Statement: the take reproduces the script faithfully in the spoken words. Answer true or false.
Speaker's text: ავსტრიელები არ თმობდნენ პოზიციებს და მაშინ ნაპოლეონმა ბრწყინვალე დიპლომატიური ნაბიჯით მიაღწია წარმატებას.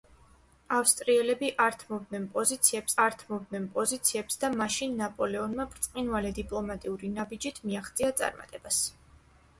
false